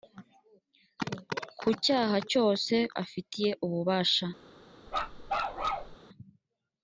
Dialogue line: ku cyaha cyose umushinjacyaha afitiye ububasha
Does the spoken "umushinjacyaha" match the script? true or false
false